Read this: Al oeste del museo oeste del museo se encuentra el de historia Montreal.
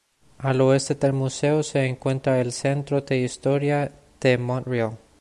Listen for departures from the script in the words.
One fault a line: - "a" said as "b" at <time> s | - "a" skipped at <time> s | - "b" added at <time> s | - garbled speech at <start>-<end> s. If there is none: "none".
- "oeste del museo" skipped at 1.6 s
- "centro" added at 2.5 s
- "de" added at 4.2 s